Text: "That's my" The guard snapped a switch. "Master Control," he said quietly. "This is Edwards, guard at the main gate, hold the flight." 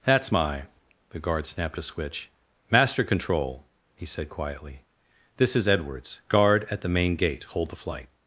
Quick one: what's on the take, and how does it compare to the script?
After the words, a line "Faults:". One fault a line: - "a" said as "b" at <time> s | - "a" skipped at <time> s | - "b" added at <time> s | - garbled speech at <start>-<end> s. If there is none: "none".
"That's my" The guard snapped a switch. "Master Control," he said quietly. "This is Edwards, guard at the main gate, hold the flight."
Faults:
none